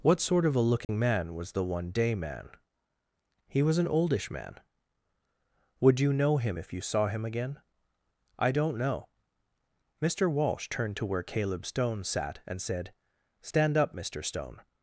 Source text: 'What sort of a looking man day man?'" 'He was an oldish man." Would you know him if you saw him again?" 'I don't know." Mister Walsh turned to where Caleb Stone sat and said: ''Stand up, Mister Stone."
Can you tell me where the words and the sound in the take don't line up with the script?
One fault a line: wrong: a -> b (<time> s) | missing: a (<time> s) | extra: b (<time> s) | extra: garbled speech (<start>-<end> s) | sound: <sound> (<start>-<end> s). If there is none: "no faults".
sound: dropout (0.8-0.9 s)
extra: was the one (1.4 s)